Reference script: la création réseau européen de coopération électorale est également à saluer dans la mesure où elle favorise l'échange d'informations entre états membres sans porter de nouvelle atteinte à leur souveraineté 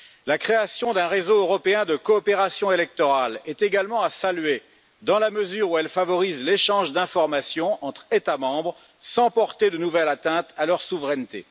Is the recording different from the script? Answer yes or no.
yes